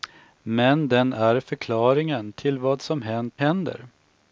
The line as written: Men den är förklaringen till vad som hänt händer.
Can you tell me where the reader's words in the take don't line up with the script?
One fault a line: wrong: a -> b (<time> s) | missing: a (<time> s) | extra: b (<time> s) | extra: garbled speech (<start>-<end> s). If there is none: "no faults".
no faults